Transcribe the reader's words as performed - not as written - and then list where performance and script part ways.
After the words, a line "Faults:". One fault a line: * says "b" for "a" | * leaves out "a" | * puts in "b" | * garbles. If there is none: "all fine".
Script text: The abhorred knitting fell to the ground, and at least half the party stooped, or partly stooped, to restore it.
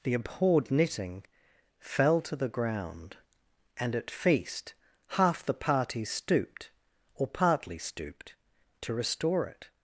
The abhorred knitting fell to the ground, and at feast half the party stooped, or partly stooped, to restore it.
Faults:
* says "feast" for "least"